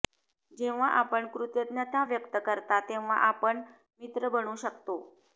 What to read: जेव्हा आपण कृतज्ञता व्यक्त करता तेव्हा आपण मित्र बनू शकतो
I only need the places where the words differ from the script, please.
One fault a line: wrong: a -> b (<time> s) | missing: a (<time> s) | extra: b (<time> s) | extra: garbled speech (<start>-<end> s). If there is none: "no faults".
no faults